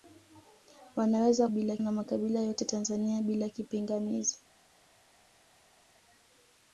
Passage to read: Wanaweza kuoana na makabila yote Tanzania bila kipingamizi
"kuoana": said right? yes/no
no